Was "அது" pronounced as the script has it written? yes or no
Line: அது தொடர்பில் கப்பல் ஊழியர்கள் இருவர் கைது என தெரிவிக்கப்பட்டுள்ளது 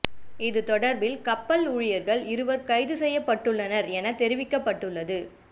no